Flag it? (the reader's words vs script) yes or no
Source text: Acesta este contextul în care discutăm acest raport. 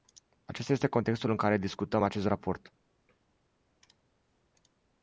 no